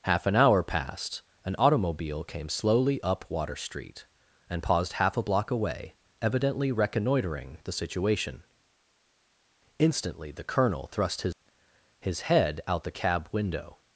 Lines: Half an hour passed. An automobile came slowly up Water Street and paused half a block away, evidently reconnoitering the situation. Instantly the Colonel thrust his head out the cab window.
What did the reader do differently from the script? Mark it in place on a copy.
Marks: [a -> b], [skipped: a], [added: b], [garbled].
Half an hour passed. An automobile came slowly up Water Street and paused half a block away, evidently reconnoitering the situation. Instantly the Colonel thrust his [added: his] head out the cab window.